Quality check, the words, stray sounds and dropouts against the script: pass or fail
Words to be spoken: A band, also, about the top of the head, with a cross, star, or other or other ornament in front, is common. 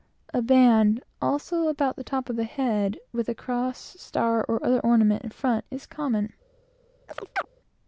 fail